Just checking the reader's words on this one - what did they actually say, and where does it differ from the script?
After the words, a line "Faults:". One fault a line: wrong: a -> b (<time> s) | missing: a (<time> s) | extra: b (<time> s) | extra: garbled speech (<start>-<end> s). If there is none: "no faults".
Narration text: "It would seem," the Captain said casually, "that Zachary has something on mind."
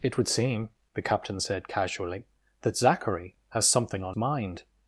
"It would seem," the Captain said casually, "that Zachary has something on mind."
Faults:
no faults